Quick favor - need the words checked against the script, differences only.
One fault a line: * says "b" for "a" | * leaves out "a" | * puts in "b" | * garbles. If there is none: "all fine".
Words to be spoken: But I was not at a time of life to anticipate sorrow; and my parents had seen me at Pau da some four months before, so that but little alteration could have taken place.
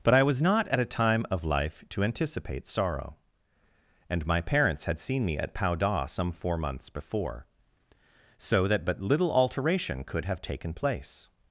all fine